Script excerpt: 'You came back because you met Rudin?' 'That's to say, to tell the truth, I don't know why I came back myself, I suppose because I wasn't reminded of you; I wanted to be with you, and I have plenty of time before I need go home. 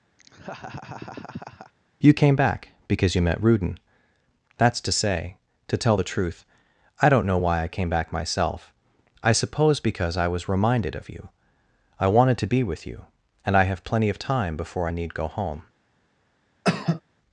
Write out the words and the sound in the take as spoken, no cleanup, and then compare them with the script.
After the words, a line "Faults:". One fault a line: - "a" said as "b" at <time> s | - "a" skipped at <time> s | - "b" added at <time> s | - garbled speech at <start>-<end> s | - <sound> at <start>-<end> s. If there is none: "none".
'You came back because you met Rudin?' 'That's to say, to tell the truth, I don't know why I came back myself, I suppose because I was reminded of you; I wanted to be with you, and I have plenty of time before I need go home.
Faults:
- laugh at 0.2-1.7 s
- "wasn't" said as "was" at 10.3 s
- cough at 16.6-17.0 s